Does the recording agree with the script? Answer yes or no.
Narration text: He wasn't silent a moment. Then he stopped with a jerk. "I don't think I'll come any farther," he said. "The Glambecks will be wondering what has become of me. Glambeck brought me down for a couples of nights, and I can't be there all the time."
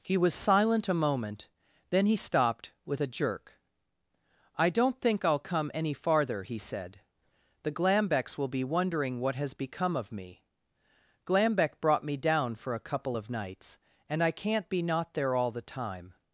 no